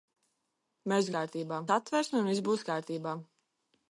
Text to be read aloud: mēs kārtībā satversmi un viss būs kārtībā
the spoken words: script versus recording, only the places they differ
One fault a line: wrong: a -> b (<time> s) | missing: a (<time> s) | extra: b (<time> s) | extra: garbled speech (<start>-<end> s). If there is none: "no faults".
no faults